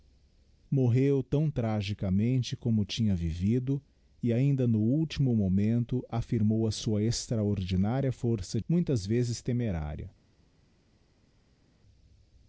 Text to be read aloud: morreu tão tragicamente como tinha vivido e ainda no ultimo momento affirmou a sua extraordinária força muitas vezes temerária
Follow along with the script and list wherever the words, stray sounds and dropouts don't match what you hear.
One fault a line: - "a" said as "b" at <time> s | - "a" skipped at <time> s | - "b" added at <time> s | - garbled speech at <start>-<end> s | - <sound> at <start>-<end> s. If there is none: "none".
none